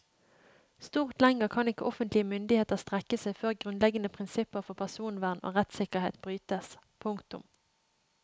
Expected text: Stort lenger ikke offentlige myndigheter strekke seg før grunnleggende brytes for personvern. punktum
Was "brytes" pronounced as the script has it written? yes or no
no